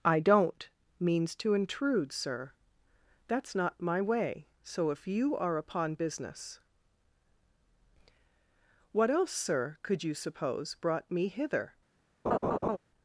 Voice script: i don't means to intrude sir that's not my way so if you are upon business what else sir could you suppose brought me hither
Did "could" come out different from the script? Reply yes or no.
no